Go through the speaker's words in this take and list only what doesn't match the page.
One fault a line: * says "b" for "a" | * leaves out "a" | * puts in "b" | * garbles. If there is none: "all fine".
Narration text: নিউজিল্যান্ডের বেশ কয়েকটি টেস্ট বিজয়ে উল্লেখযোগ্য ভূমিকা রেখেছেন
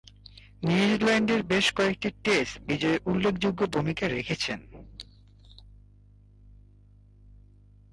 all fine